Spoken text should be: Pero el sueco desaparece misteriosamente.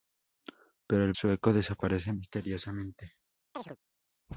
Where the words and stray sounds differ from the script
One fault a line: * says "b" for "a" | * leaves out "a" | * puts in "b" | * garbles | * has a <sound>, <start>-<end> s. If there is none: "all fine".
* has a chirp, 3.5-3.8 s